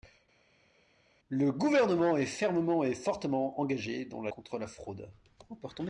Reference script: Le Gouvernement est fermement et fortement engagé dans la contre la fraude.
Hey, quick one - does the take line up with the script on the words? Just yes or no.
yes